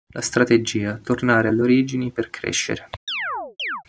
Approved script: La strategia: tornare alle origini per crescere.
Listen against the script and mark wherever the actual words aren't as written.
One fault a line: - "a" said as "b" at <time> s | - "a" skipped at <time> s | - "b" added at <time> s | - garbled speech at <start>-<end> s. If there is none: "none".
none